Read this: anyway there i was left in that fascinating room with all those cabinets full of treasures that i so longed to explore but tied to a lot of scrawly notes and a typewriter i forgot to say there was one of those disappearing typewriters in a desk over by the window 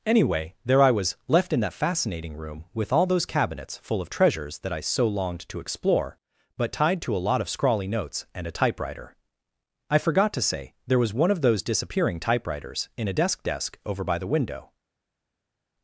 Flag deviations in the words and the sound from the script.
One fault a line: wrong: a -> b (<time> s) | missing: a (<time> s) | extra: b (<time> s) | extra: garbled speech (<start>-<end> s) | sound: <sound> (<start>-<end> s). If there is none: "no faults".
extra: desk (13.4 s)